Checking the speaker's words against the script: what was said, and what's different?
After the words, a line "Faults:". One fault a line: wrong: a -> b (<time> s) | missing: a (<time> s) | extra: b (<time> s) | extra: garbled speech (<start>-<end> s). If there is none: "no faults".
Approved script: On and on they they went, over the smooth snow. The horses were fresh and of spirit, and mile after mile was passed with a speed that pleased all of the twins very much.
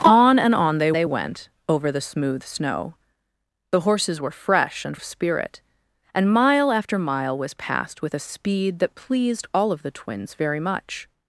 On and on they they went, over the smooth snow. The horses were fresh and of spirit, and mile after mile was passed with a speed that pleased all of the twins very much.
Faults:
no faults